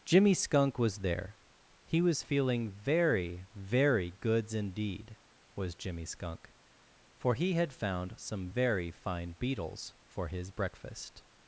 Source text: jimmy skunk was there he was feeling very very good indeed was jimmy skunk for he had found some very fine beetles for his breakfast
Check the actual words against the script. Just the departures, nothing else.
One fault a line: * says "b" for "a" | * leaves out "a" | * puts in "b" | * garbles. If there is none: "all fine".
* says "goods" for "good"